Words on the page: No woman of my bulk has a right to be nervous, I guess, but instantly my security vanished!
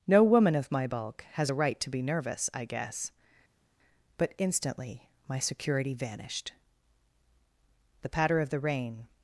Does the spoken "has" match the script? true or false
true